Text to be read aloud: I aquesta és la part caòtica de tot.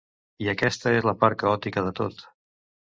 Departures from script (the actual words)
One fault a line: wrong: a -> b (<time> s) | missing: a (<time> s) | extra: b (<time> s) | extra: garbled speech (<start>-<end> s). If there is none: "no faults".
no faults